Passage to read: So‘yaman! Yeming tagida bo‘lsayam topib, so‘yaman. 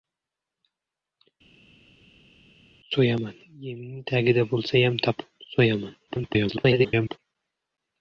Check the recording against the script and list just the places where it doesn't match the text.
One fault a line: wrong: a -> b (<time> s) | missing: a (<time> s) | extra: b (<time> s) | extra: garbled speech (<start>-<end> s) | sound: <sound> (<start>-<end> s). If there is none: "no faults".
extra: garbled speech (6.1-7.2 s)